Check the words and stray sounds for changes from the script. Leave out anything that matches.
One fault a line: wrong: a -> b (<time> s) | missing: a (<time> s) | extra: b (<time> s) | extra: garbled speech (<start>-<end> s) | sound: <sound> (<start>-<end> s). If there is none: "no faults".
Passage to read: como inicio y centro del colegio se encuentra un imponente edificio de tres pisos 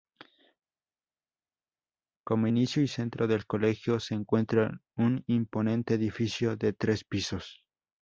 no faults